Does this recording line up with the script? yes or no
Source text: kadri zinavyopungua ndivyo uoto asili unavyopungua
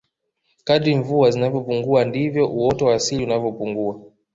no